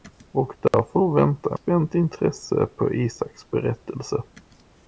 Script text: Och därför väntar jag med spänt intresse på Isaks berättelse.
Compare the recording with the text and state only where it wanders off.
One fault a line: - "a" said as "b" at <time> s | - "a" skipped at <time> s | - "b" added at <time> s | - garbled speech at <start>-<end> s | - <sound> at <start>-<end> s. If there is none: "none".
- dropout at 0.7-0.7 s
- "med" skipped at 1.6 s